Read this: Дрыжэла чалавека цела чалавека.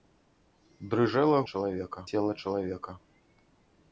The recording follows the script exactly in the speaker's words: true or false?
true